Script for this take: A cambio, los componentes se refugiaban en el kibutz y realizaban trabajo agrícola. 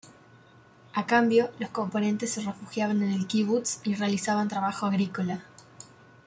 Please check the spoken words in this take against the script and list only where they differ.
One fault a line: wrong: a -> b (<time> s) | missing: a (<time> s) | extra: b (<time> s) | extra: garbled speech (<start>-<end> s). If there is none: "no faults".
no faults